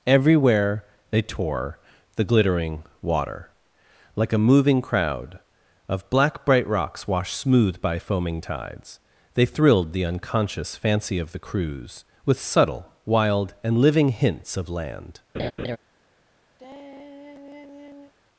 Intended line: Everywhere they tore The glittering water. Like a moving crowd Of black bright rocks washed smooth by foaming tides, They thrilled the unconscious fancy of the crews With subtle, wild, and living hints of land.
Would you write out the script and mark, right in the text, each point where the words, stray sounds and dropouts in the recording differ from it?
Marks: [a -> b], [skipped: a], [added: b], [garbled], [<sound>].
Everywhere they tore The glittering water. Like a moving crowd Of black bright rocks washed smooth by foaming tides, They thrilled the unconscious fancy of the crews With subtle, wild, and living hints of land. [laugh] [sigh]